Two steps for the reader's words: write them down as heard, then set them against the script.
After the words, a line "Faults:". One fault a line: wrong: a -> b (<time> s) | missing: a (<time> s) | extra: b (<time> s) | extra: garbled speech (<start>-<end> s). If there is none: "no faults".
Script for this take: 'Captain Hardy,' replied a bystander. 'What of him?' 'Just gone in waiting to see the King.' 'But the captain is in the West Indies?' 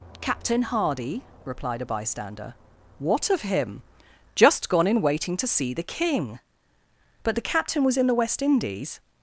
'Captain Hardy,' replied a bystander. 'What of him?' 'Just gone in waiting to see the King.' 'But the captain was in the West Indies?'
Faults:
wrong: is -> was (7.8 s)